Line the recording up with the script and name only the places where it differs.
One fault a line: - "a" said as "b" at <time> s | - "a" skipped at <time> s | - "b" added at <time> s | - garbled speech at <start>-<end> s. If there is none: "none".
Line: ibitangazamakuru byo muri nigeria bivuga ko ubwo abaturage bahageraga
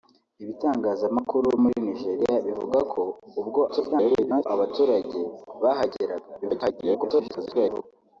- "byo" skipped at 1.5 s
- garbled speech at 3.7-4.5 s
- garbled speech at 6.4-7.8 s